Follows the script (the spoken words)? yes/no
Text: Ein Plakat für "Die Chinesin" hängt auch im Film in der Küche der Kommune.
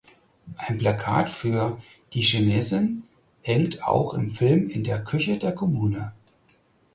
yes